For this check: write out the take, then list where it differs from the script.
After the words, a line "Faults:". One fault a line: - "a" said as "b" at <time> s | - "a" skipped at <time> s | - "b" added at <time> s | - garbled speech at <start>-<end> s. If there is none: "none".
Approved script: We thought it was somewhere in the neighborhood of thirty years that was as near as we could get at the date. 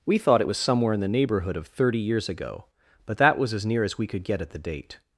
We thought it was somewhere in the neighborhood of thirty years ago, but that was as near as we could get at the date.
Faults:
- "ago but" added at 2.3 s